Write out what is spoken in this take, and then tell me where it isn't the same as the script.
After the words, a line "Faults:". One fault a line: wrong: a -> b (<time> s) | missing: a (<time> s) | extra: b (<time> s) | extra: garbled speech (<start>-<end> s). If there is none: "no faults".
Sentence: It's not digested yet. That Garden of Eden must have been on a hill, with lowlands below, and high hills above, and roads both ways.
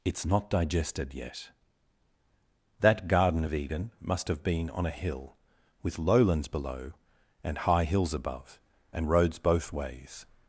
It's not digested yet. That Garden of Eden must have been on a hill, with lowlands below, and high hills above, and roads both ways.
Faults:
no faults